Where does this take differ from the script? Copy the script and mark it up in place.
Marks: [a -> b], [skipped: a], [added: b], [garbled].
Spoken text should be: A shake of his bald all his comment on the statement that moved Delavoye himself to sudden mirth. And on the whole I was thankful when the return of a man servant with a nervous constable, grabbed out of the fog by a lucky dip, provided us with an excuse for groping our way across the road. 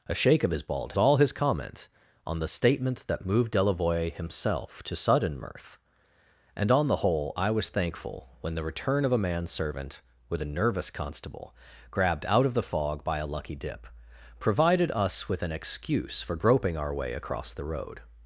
A shake of his bald all his comment on the statement that moved Delavoye himself to sudden mirth. And on the whole I was thankful when the return of a man servant with a nervous constable, grabbed out of the fog by a lucky dip, provided us with an excuse for groping our way across the road.